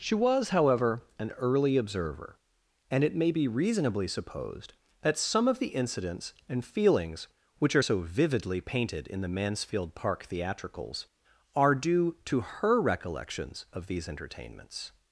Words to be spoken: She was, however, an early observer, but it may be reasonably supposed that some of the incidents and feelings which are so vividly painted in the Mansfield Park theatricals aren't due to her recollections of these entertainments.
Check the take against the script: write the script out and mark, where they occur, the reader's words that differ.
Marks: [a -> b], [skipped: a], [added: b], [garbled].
She was, however, an early observer, [but -> and] it may be reasonably supposed that some of the incidents and feelings which are so vividly painted in the Mansfield Park theatricals [aren't -> are] due to her recollections of these entertainments.